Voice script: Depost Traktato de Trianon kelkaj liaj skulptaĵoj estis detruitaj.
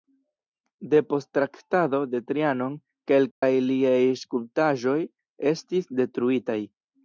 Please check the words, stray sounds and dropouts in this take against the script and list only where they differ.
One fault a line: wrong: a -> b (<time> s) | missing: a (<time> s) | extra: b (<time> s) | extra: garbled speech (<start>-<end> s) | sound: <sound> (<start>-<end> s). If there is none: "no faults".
sound: dropout (3.3-3.4 s)